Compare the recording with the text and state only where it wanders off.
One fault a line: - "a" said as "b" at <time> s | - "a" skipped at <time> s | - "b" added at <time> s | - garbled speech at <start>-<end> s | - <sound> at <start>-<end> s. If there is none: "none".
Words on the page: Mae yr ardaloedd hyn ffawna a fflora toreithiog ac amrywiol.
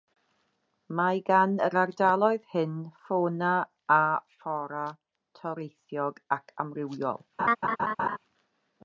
- "gan" added at 1.3 s
- laugh at 7.4-8.2 s